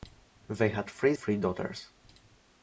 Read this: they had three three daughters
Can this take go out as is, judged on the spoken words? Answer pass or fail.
pass